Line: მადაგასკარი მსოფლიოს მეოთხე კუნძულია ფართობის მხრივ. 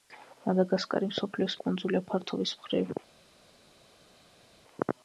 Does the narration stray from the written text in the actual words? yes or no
yes